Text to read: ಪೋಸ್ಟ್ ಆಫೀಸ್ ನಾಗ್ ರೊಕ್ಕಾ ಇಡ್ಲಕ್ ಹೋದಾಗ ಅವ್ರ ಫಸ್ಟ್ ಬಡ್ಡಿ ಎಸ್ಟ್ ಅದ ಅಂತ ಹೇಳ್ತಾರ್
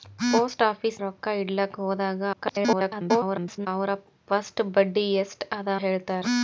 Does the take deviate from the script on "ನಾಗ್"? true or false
true